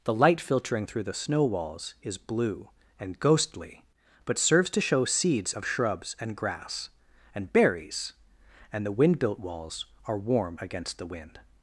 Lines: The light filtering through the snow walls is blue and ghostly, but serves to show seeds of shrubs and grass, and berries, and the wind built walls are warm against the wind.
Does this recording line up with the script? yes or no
yes